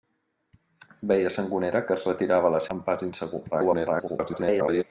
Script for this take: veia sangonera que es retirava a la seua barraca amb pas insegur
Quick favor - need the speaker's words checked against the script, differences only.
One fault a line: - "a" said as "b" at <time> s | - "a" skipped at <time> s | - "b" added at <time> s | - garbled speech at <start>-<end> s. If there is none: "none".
- "seua barraca" skipped at 2.6 s
- garbled speech at 3.5-4.8 s